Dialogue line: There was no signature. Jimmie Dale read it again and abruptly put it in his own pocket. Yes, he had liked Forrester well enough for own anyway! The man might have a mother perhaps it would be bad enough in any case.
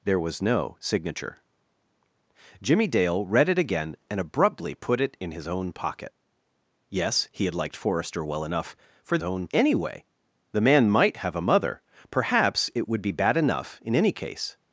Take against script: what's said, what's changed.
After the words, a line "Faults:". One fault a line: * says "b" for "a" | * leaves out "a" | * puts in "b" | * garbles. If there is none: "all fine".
There was no signature. Jimmie Dale read it again and abruptly put it in his own pocket. Yes, he had liked Forrester well enough for own anyway! The man might have a mother perhaps it would be bad enough in any case.
Faults:
all fine